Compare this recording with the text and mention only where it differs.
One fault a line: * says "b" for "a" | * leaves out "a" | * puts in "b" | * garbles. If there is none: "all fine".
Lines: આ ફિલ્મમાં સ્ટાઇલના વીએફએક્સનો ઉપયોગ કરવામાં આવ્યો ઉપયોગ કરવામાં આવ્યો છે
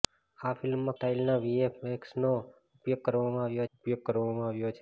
all fine